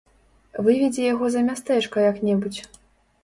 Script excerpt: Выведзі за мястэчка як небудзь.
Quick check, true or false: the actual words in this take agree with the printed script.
false